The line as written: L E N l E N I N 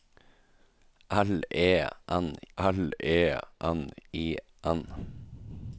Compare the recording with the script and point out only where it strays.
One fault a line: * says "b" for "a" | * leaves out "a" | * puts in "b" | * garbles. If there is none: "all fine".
all fine